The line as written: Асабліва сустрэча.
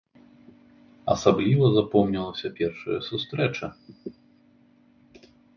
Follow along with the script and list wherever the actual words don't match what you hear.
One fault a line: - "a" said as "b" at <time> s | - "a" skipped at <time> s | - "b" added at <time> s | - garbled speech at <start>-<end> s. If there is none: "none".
- "запомнілася першая" added at 1.8 s